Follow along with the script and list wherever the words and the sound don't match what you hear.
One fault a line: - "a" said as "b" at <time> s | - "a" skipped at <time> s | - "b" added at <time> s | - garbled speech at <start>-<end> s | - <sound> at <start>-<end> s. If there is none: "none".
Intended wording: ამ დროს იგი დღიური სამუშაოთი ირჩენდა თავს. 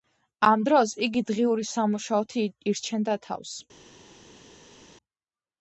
none